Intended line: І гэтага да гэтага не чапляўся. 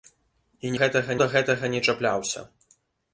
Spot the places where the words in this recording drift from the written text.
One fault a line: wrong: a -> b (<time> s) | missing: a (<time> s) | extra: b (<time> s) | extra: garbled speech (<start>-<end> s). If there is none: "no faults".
no faults